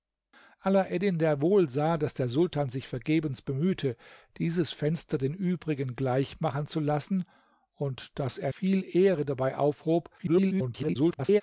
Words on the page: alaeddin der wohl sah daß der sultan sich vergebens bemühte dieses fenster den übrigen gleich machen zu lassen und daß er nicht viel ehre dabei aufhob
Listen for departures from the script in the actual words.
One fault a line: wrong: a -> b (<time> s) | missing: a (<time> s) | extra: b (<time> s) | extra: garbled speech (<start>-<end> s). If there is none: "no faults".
missing: nicht (8.5 s)
extra: garbled speech (10.2-11.4 s)